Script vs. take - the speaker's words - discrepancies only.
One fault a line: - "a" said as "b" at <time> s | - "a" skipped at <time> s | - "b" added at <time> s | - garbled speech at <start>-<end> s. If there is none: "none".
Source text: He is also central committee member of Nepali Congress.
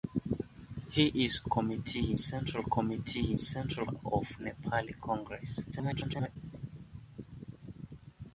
- "also" said as "committee" at 1.4 s
- "member" said as "central" at 3.4 s
- garbled speech at 5.7-6.4 s